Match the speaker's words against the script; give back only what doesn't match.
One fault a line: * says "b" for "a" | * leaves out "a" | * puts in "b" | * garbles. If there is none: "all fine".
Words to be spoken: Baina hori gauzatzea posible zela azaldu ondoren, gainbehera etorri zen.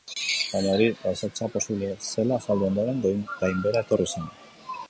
all fine